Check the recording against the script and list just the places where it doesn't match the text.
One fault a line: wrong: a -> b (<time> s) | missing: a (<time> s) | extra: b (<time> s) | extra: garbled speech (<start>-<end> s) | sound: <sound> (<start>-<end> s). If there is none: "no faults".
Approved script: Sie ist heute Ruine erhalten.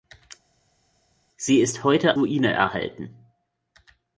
no faults